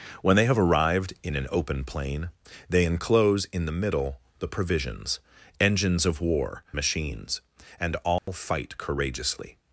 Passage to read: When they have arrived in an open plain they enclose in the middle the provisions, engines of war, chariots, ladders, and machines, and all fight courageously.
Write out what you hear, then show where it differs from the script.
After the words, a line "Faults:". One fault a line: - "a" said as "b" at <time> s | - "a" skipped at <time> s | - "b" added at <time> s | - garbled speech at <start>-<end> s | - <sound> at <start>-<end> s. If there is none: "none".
When they have arrived in an open plain they enclose in the middle the provisions, engines of war, machines, and all fight courageously.
Faults:
- "chariots ladders and" skipped at 6.6 s
- dropout at 8.2-8.3 s